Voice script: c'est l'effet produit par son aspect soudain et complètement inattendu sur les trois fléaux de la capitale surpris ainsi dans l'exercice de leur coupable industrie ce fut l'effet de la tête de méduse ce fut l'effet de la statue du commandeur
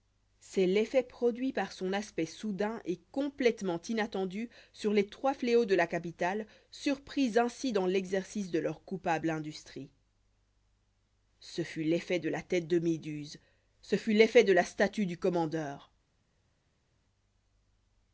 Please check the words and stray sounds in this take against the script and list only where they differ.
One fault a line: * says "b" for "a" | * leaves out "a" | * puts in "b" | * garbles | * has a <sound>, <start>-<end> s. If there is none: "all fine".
all fine